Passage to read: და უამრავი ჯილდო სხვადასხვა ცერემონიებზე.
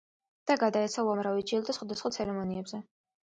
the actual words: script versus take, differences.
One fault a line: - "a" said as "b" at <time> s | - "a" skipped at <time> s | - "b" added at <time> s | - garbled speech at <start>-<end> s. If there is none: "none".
- "გადაეცა" added at 0.6 s